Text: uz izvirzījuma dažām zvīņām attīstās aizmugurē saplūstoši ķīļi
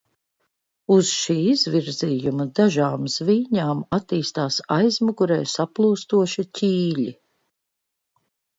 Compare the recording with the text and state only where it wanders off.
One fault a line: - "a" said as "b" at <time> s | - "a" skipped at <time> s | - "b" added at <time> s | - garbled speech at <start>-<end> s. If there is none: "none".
- "šī" added at 1.2 s